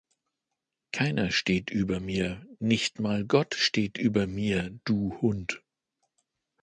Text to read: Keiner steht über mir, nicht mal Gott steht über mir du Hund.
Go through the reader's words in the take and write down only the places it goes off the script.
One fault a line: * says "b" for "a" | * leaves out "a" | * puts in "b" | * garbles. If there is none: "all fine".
all fine